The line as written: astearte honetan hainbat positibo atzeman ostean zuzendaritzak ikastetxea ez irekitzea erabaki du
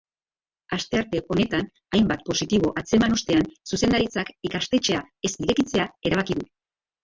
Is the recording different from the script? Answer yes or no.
no